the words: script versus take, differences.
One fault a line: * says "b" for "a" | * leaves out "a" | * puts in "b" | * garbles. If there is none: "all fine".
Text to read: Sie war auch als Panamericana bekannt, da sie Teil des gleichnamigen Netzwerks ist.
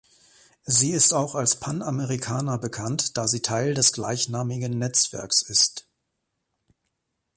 * says "ist" for "war"